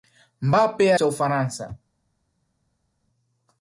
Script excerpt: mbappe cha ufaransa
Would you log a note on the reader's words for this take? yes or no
no